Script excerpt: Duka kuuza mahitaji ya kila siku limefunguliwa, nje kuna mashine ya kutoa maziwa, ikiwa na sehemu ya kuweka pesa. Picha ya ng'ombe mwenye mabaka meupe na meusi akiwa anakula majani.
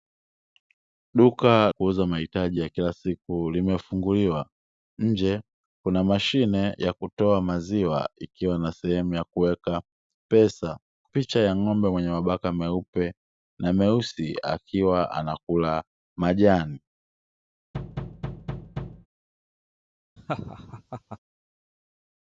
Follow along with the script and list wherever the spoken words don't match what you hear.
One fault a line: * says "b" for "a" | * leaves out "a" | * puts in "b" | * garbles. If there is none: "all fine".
all fine